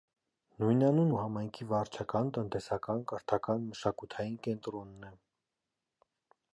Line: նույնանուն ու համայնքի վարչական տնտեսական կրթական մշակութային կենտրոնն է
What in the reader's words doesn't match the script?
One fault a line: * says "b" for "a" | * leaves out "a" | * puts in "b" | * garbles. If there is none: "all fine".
all fine